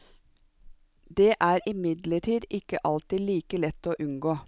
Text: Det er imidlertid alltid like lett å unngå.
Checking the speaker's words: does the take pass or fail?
fail